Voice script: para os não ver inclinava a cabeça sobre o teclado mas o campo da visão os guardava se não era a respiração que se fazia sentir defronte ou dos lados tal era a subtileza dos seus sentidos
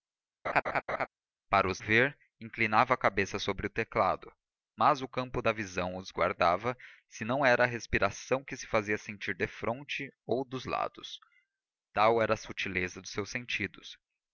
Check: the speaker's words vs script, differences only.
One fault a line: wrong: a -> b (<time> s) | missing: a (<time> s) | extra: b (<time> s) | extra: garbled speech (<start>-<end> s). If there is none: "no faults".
missing: não (1.8 s)